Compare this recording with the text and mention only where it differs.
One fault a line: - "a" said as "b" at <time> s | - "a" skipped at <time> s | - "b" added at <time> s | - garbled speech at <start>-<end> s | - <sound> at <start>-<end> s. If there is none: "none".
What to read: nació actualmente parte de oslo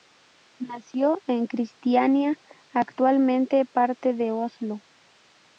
- "en kristiania" added at 1.3 s